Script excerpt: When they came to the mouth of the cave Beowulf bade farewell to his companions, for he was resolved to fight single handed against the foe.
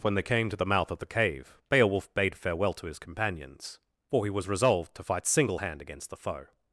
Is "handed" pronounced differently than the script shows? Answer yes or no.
yes